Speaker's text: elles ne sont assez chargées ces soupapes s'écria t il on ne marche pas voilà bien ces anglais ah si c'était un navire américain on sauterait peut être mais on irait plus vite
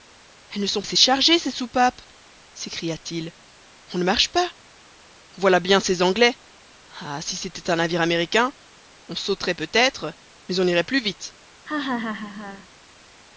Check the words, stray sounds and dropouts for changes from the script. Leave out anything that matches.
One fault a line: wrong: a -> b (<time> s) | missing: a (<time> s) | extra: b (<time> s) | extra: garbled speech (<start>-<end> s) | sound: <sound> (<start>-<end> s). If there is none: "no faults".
sound: laugh (11.7-12.7 s)